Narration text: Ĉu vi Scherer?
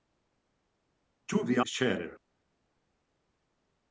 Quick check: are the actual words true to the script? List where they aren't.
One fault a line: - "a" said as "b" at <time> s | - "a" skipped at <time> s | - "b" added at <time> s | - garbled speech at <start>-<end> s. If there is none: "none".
none